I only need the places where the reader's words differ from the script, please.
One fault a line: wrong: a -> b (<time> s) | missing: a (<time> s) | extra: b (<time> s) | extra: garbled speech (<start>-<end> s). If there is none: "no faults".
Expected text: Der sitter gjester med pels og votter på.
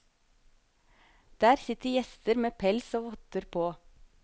no faults